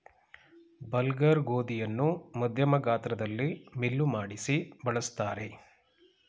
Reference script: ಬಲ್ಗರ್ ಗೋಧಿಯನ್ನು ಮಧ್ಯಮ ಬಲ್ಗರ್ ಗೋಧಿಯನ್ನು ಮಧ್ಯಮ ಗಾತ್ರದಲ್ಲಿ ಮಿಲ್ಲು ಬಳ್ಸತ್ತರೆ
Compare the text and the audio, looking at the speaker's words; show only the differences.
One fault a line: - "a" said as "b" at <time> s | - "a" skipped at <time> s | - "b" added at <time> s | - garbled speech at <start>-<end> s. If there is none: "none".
- "ಬಲ್ಗರ್ ಗೋಧಿಯನ್ನು ಮಧ್ಯಮ" skipped at 2.8 s
- "ಮಾಡಿಸಿ" added at 4.1 s